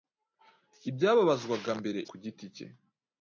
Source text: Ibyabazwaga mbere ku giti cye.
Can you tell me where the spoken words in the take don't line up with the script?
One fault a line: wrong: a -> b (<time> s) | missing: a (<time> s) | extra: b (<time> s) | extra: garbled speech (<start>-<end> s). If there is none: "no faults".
no faults